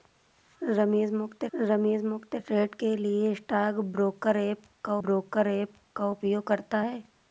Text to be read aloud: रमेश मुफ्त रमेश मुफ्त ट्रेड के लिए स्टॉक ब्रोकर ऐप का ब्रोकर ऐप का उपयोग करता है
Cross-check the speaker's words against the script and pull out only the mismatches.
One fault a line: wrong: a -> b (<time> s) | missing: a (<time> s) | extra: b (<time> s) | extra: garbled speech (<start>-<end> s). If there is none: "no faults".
no faults